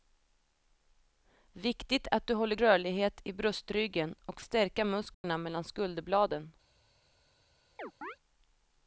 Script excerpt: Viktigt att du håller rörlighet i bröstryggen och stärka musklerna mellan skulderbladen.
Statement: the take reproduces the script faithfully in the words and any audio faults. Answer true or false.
false